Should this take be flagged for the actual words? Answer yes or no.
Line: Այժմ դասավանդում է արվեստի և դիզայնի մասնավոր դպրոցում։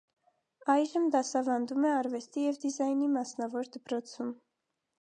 no